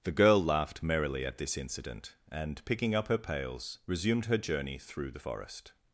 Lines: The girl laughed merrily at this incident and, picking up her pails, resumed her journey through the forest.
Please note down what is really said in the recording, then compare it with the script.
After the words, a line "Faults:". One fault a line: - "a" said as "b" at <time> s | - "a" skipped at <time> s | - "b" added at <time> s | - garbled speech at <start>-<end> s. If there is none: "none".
The girl laughed merrily at this incident and, picking up her pails, resumed her journey through the forest.
Faults:
none